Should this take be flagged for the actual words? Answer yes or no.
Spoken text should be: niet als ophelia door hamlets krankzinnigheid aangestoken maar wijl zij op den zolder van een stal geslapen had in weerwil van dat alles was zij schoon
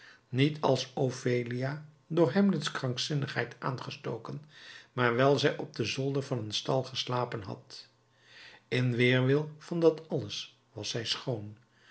no